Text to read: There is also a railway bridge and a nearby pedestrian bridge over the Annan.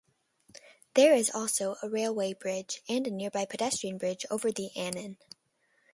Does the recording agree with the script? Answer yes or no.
yes